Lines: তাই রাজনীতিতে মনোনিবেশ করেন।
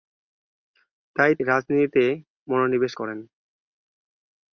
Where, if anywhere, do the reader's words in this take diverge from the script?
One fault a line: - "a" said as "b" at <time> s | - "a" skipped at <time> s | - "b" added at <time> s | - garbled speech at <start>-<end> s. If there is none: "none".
none